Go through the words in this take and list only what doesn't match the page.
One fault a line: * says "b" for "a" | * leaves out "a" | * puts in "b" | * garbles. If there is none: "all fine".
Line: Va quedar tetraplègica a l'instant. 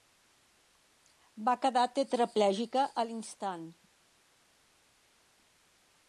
all fine